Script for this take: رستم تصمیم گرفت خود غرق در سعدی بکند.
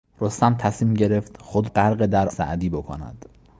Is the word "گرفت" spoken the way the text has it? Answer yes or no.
yes